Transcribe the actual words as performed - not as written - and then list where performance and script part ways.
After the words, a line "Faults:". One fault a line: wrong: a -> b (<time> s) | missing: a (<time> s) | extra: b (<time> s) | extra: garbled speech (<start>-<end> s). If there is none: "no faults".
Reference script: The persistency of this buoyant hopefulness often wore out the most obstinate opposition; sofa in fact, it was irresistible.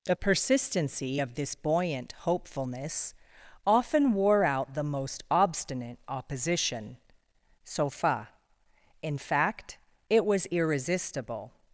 The persistency of this buoyant hopefulness often wore out the most obstinate opposition; sofa in fact, it was irresistible.
Faults:
no faults